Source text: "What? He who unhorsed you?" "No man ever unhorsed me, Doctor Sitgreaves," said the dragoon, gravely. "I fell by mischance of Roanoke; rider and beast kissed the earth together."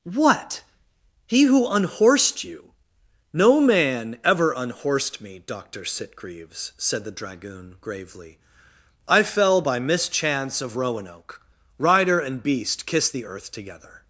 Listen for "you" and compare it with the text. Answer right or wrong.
right